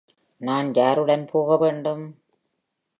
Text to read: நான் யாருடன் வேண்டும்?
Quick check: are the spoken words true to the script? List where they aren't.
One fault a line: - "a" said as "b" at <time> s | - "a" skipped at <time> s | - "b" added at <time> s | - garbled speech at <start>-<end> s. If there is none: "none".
- "போக" added at 1.3 s